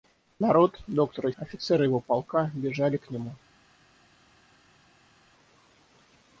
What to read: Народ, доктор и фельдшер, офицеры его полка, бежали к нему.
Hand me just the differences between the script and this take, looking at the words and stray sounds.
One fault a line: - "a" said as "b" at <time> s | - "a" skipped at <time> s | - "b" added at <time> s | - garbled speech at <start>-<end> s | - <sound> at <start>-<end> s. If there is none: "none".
- "фельдшер" skipped at 1.3 s